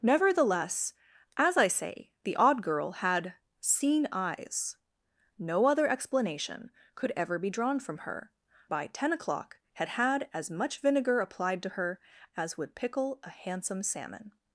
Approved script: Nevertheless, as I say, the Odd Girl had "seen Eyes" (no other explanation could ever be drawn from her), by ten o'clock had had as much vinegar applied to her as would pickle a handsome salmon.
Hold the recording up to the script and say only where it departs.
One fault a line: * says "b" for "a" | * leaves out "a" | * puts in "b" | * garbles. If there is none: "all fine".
all fine